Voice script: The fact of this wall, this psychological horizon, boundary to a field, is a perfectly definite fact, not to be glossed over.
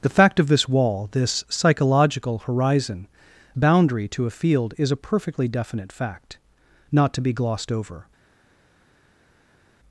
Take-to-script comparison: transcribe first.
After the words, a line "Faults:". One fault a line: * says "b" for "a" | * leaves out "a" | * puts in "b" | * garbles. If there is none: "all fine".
The fact of this wall, this psychological horizon, boundary to a field, is a perfectly definite fact, not to be glossed over.
Faults:
all fine